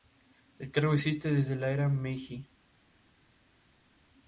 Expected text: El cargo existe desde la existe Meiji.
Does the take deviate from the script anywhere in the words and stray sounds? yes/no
yes